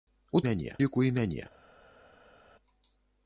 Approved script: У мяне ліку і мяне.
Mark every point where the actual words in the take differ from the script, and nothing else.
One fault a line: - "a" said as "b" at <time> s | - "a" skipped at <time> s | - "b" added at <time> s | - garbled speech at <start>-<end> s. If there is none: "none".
none